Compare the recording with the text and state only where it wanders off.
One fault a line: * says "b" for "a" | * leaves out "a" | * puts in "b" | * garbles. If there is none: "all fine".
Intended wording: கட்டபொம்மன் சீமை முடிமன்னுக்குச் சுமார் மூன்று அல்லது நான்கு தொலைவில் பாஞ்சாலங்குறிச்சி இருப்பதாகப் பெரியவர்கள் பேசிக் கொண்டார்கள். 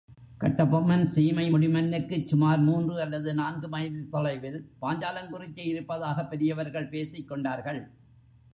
* puts in "மைல்"